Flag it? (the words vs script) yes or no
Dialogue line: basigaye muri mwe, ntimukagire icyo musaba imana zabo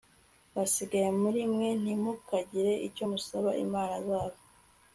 no